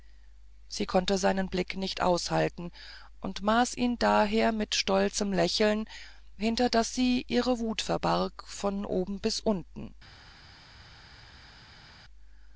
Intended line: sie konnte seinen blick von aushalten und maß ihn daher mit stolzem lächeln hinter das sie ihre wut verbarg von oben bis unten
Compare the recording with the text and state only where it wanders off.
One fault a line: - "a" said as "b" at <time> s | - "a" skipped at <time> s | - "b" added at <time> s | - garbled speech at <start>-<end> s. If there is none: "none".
- "von" said as "nicht" at 1.8 s